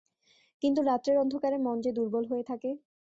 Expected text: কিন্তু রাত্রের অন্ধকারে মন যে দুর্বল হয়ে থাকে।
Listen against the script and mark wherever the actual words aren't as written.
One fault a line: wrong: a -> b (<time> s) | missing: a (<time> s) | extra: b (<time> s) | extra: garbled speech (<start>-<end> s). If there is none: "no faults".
no faults